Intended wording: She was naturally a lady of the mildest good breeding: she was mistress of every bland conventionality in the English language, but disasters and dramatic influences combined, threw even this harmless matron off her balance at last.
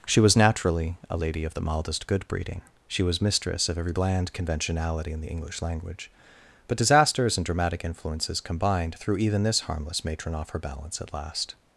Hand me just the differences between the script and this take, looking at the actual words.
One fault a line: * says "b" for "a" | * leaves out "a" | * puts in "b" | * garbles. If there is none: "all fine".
all fine